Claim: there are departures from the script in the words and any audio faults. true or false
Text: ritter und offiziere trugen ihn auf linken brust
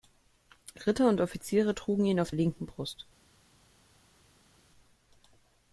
false